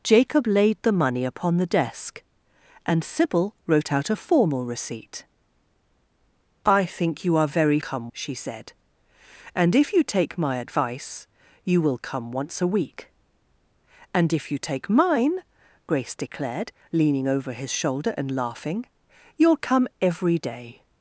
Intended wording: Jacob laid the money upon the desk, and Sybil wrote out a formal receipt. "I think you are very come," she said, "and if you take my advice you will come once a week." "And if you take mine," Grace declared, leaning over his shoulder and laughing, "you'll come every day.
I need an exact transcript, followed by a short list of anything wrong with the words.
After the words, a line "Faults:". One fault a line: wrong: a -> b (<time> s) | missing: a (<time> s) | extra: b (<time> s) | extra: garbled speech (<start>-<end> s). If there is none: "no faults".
Jacob laid the money upon the desk, and Sybil wrote out a formal receipt. "I think you are very come," she said, "and if you take my advice you will come once a week." "And if you take mine," Grace declared, leaning over his shoulder and laughing, "you'll come every day.
Faults:
no faults